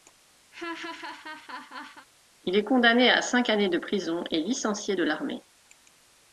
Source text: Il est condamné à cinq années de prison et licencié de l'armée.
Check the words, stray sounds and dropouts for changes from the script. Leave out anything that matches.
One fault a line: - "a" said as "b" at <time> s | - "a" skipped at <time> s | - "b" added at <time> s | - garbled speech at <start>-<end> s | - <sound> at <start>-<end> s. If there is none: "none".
- laugh at 0.5-2.1 s